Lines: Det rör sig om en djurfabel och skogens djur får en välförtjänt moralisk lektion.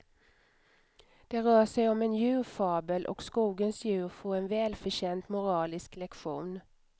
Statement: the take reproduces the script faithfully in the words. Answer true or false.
true